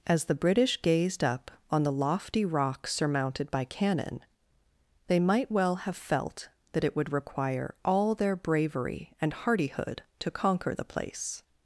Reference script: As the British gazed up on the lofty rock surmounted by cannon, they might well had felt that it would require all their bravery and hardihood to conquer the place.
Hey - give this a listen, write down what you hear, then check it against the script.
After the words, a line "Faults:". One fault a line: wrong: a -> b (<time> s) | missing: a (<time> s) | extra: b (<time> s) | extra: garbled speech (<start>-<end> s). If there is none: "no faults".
As the British gazed up on the lofty rock surmounted by cannon, they might well have felt that it would require all their bravery and hardihood to conquer the place.
Faults:
wrong: had -> have (5.8 s)